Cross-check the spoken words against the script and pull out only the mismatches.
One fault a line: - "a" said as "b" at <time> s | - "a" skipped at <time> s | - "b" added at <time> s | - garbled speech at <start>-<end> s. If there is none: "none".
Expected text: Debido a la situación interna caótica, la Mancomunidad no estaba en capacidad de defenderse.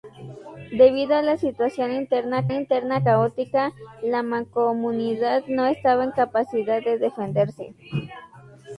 - "interna" added at 2.5 s